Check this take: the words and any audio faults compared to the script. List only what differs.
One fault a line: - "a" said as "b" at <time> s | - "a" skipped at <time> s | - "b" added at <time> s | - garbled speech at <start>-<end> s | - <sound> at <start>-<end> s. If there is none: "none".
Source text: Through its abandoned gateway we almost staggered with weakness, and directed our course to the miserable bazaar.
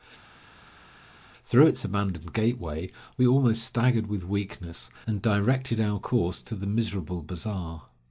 none